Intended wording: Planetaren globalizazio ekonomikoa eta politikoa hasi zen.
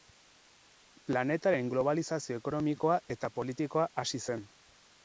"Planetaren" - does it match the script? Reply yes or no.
yes